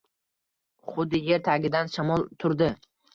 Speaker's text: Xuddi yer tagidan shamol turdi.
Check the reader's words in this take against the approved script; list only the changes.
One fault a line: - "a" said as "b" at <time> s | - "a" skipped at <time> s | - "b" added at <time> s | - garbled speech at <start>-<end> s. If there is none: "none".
none